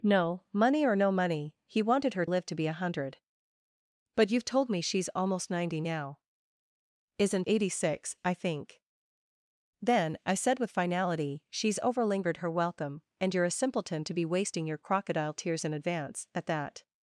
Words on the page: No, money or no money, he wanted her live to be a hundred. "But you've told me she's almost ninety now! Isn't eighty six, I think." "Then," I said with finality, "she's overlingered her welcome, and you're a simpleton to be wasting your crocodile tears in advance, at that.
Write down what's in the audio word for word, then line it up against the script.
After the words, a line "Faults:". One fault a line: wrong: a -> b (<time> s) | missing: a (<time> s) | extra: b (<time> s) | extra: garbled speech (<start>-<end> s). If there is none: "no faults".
No, money or no money, he wanted her live to be a hundred. "But you've told me she's almost ninety now! Isn't eighty six, I think." "Then," I said with finality, "she's overlingered her welcome, and you're a simpleton to be wasting your crocodile tears in advance, at that.
Faults:
no faults